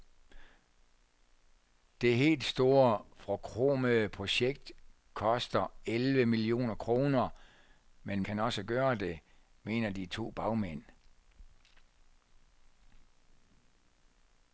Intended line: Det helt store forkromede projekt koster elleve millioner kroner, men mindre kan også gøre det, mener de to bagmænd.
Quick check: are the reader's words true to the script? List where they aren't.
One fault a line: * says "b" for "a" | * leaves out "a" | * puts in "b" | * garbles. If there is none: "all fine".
* leaves out "mindre"